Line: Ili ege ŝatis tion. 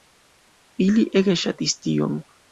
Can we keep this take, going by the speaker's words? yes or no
yes